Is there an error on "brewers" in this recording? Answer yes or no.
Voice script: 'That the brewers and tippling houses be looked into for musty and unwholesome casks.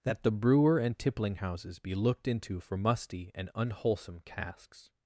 yes